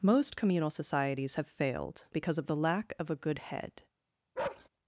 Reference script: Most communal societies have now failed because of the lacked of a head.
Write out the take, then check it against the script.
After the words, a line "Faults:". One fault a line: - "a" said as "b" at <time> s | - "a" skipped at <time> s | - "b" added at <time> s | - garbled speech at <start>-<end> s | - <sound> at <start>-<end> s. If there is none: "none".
Most communal societies have failed because of the lack of a good head.
Faults:
- "now" skipped at 1.5 s
- "lacked" said as "lack" at 2.6 s
- "good" added at 3.2 s
- bark at 4.3-4.7 s